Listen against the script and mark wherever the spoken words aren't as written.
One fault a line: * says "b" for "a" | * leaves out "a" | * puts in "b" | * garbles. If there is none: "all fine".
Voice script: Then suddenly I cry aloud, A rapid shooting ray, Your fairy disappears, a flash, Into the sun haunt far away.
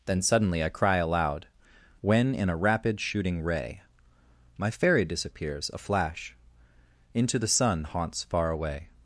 * puts in "When in"
* says "My" for "Your"
* says "haunts" for "haunt"